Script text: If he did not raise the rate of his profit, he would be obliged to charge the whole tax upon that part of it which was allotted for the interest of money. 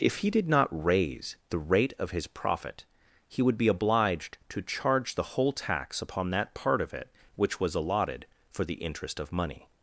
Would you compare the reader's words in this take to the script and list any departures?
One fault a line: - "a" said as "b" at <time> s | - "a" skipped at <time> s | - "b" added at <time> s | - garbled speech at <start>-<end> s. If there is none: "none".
none